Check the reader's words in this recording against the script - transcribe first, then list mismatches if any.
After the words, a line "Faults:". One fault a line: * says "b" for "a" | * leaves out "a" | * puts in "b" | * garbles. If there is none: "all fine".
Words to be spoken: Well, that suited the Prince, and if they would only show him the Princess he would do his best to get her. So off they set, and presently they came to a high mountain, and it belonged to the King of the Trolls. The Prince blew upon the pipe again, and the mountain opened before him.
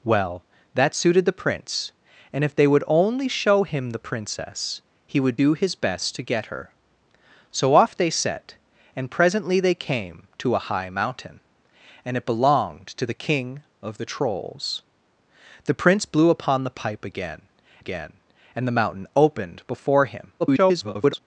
Well, that suited the Prince, and if they would only show him the Princess he would do his best to get her. So off they set, and presently they came to a high mountain, and it belonged to the King of the Trolls. The Prince blew upon the pipe again again, and the mountain opened before him. [garbled]
Faults:
* puts in "again"
* garbles